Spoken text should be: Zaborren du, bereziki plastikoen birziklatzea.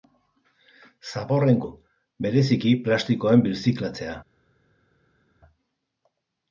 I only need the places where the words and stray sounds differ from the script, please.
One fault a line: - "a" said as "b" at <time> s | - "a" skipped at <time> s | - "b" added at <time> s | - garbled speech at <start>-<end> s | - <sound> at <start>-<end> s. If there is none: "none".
none